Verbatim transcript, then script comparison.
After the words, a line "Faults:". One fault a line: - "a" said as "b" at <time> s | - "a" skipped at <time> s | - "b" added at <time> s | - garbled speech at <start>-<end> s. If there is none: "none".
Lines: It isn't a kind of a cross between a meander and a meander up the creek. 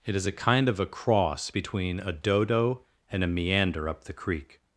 It is a kind of a cross between a dodo and a meander up the creek.
Faults:
- "isn't" said as "is" at 0.1 s
- "meander" said as "dodo" at 2.1 s